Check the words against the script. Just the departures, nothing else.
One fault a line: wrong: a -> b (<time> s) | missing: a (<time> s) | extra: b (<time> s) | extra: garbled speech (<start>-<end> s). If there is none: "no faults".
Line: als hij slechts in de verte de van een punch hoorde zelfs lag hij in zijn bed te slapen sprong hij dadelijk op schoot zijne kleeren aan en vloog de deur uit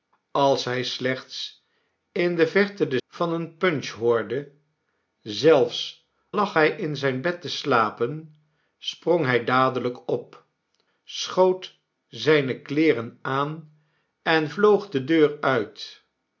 no faults